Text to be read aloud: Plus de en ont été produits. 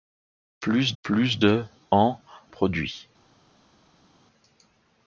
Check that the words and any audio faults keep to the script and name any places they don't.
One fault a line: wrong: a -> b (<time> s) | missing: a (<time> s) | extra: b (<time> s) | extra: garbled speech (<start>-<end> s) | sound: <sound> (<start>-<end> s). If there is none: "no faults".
extra: plus (1.0 s)
missing: ont été (2.2 s)